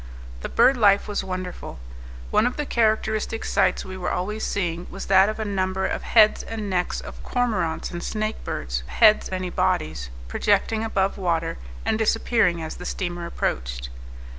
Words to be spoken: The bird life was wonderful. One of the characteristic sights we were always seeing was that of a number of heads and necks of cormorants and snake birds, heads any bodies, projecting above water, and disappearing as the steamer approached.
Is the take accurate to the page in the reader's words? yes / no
yes